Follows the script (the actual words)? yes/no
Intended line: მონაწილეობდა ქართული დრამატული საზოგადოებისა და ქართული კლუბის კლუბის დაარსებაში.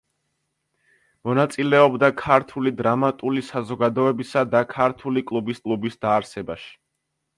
yes